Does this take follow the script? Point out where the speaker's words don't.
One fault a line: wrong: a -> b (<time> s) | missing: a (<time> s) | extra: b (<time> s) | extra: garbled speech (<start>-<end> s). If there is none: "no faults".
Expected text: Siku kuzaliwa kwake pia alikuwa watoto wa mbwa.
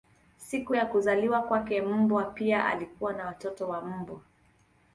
extra: ya (0.7 s)
extra: mbwa (1.8 s)
extra: na (3.1 s)